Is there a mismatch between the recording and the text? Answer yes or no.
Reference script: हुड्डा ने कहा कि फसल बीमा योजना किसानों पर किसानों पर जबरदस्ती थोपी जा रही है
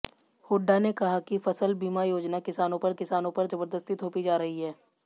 no